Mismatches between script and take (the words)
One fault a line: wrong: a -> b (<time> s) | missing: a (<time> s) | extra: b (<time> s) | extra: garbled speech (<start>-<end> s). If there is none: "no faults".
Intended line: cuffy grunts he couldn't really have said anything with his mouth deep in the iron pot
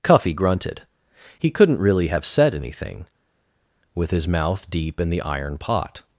wrong: grunts -> grunted (0.3 s)